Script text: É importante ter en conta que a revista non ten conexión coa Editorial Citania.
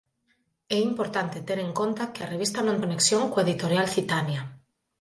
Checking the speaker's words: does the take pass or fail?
fail